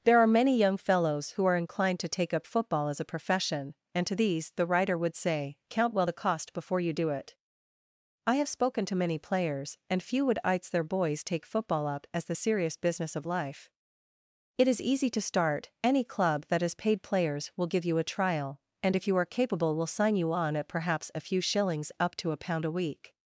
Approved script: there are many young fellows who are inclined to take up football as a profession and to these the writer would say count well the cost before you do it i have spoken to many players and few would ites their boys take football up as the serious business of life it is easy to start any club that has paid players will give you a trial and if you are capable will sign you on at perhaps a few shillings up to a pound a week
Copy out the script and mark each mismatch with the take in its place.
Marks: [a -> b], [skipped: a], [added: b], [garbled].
there are many young fellows who are inclined to take up football as a profession and to these the writer would say count well the cost before you do it i have spoken to many players and few would ites their boys take football up as the serious business of life it is easy to start any club that has paid players will give you a trial and if you are capable will sign you on at perhaps a few shillings up to a pound a week